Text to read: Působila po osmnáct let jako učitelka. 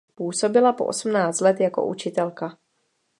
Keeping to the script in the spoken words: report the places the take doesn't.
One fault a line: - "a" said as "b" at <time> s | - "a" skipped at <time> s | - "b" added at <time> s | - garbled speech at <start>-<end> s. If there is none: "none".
none